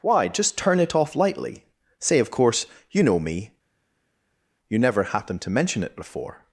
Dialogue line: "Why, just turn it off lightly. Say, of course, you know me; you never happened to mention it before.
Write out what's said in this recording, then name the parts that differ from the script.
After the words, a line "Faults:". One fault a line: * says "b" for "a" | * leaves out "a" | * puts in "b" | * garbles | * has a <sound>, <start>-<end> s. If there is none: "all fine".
"Why, just turn it off lightly. Say, of course, you know me; you never happened to mention it before.
Faults:
all fine